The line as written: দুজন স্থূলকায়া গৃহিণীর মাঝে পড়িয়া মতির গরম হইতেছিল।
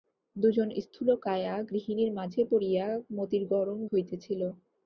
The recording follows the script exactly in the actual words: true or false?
true